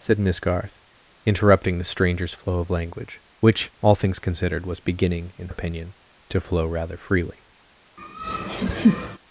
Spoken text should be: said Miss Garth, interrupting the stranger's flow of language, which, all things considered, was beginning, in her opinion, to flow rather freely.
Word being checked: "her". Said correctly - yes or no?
no